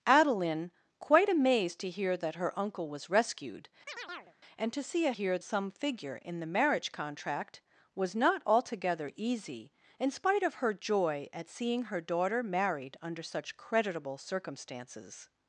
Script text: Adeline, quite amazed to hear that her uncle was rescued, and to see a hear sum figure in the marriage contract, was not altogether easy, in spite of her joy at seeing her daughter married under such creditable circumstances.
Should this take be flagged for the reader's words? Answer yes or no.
no